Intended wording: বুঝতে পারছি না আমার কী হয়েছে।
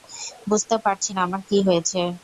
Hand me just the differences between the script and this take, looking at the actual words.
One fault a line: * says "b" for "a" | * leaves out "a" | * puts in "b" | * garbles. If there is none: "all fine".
all fine